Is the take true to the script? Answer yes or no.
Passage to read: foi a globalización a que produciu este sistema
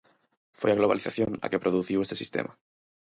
yes